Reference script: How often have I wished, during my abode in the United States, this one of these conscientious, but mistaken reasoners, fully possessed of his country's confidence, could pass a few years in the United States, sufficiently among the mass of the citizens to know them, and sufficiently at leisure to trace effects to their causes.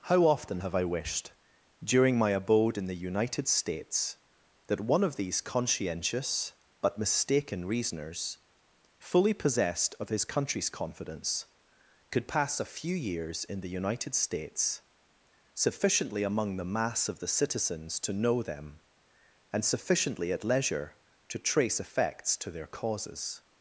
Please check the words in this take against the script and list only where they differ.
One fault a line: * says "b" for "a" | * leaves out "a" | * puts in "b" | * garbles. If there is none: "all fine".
* says "that" for "this"